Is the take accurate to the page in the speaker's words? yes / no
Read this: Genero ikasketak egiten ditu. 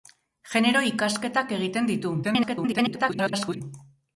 no